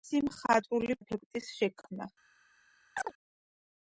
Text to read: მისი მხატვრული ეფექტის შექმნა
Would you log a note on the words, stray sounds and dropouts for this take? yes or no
yes